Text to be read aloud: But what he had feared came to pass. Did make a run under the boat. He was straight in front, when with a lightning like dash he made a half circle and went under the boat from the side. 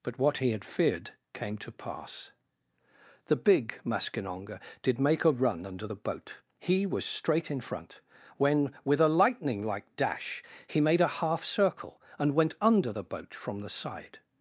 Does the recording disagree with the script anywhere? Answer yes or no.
yes